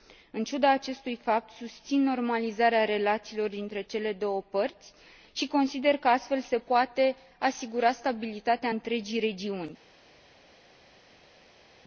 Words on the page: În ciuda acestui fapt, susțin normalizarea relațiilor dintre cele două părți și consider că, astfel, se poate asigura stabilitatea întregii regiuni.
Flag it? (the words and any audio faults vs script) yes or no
no